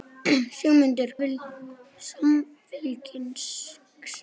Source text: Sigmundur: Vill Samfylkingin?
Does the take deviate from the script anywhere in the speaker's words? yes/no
no